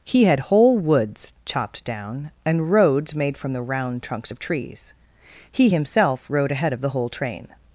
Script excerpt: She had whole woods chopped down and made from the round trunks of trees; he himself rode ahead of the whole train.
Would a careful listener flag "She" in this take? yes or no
yes